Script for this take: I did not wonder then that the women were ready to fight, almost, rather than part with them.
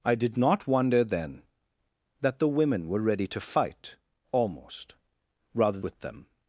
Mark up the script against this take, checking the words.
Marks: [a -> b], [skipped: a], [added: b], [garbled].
I did not wonder then that the women were ready to fight, almost, rather [skipped: than part] with them.